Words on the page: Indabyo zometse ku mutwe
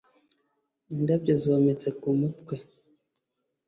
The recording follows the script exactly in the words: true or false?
true